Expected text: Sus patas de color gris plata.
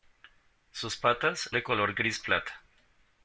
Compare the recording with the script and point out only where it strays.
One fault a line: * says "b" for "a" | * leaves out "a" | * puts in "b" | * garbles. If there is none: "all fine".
all fine